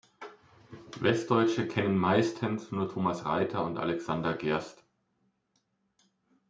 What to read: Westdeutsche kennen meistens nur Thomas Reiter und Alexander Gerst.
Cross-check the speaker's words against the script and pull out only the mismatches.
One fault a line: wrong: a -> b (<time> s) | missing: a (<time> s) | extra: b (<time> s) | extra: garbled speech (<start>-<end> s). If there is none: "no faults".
no faults